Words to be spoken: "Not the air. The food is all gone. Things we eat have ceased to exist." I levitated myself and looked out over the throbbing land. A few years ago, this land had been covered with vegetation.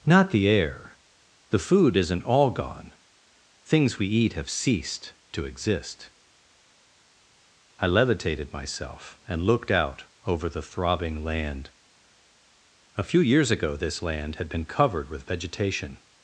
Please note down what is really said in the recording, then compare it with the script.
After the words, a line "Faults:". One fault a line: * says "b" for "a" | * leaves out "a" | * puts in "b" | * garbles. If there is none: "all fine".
"Not the air. The food isn't all gone. Things we eat have ceased to exist." I levitated myself and looked out over the throbbing land. A few years ago, this land had been covered with vegetation.
Faults:
* says "isn't" for "is"